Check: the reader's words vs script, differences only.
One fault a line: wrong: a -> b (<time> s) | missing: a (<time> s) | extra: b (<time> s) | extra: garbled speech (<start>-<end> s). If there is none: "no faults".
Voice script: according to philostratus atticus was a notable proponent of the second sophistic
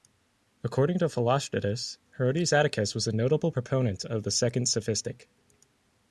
extra: herodes (2.2 s)